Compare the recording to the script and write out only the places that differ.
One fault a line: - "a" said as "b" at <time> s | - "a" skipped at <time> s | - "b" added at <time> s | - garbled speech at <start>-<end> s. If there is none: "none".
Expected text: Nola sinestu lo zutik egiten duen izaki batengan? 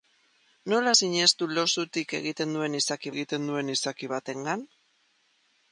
- "egiten duen izaki" added at 3.1 s